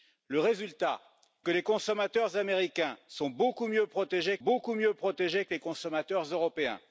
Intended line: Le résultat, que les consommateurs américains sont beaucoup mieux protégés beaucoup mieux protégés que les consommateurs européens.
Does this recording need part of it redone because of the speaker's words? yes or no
no